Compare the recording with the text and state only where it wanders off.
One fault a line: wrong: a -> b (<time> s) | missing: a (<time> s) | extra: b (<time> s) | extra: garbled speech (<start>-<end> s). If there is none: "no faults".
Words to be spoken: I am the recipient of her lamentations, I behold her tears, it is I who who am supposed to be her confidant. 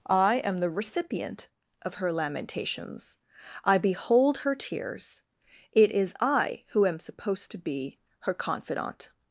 missing: who (6.8 s)